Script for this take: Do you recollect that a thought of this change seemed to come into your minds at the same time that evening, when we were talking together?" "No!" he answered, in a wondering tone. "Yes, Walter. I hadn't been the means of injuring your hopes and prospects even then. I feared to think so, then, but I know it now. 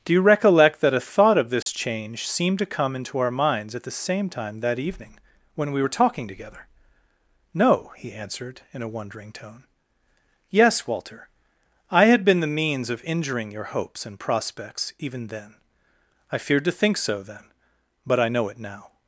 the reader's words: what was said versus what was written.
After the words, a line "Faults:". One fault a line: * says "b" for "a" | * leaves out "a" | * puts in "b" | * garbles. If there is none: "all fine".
Do you recollect that a thought of this change seemed to come into our minds at the same time that evening, when we were talking together?" "No!" he answered, in a wondering tone. "Yes, Walter. I had been the means of injuring your hopes and prospects even then. I feared to think so, then, but I know it now.
Faults:
* says "our" for "your"
* says "had" for "hadn't"